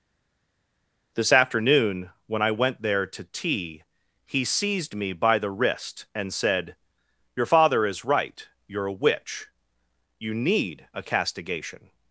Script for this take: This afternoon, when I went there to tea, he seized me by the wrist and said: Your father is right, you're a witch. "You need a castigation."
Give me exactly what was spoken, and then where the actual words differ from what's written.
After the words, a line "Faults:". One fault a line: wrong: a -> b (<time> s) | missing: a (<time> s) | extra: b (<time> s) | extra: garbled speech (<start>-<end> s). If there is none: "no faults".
This afternoon, when I went there to tea, he seized me by the wrist and said: Your father is right, you're a witch. "You need a castigation."
Faults:
no faults